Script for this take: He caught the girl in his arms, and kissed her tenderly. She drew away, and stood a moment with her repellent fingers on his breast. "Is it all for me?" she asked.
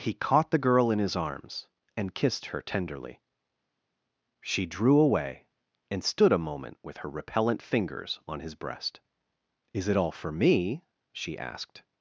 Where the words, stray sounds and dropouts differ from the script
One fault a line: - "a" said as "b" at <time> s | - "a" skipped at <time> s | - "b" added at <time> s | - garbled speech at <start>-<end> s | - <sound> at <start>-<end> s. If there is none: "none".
none